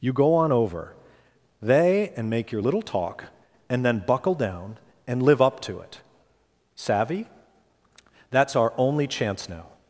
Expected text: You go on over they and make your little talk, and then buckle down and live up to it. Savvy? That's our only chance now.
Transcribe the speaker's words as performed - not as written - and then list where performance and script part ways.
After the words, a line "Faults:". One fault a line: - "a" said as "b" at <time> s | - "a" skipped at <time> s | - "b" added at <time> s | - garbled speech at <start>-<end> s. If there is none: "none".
You go on over they and make your little talk, and then buckle down and live up to it. Savvy? That's our only chance now.
Faults:
none